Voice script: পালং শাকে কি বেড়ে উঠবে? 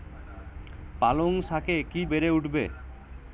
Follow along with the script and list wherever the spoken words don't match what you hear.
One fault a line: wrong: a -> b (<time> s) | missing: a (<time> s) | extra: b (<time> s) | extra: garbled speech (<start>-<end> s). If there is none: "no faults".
no faults